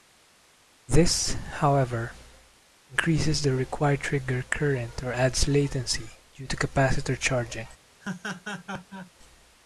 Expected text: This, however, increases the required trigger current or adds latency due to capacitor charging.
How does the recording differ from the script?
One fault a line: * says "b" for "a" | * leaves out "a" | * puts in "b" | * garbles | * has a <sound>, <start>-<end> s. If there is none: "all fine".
* has a laugh, 8.0-9.1 s